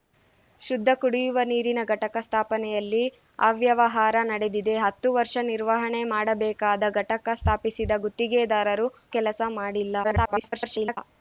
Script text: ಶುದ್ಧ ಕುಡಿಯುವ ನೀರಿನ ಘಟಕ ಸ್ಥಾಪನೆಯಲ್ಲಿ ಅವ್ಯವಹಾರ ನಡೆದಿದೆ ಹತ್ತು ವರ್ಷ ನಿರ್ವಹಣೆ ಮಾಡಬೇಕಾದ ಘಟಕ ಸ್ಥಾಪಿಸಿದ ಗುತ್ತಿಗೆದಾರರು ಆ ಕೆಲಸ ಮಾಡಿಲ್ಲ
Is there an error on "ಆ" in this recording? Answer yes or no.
yes